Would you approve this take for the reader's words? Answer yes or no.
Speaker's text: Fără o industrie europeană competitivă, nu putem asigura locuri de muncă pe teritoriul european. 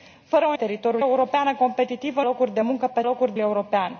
no